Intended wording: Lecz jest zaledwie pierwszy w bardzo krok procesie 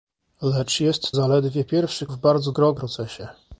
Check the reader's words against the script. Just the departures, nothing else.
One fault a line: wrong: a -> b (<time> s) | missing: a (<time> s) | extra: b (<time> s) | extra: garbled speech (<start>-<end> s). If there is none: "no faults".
no faults